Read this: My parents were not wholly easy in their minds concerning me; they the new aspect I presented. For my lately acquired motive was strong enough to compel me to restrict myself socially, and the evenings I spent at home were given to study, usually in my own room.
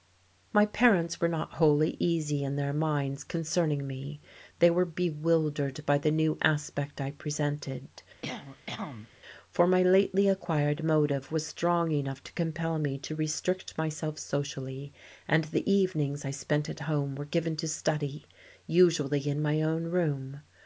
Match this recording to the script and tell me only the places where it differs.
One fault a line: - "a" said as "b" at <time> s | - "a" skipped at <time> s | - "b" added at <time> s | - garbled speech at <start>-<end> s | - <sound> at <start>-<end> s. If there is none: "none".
- "were bewildered by" added at 4.7 s
- cough at 8.2-9.1 s